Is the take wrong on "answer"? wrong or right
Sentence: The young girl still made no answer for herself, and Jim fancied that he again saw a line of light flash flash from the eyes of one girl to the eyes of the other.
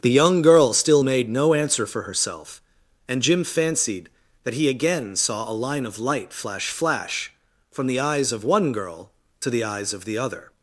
right